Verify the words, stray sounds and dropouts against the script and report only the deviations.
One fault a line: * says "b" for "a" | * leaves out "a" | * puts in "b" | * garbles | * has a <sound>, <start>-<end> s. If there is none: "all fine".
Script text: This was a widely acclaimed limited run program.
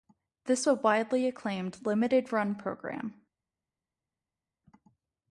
* leaves out "was"